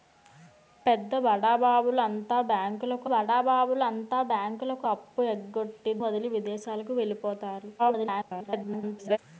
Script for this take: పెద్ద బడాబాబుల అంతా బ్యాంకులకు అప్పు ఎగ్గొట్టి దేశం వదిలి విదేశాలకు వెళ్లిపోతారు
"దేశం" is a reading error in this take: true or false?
true